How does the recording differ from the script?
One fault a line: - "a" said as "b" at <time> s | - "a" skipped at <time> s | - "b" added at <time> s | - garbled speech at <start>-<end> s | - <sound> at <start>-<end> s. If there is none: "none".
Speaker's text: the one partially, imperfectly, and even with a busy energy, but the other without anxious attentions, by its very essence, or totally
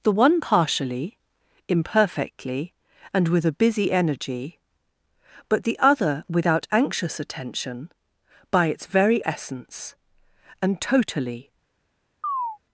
- "even" skipped at 3.3 s
- "attentions" said as "attention" at 7.2 s
- "or" said as "and" at 10.6 s
- chirp at 12.2-12.6 s